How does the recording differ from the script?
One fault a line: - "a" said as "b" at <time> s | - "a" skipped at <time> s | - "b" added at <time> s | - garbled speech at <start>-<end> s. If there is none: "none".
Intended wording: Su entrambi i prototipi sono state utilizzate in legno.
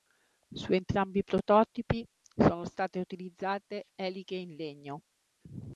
- "eliche" added at 3.9 s